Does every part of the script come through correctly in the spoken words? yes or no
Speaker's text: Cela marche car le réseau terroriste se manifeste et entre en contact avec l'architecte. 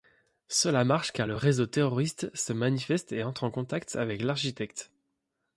yes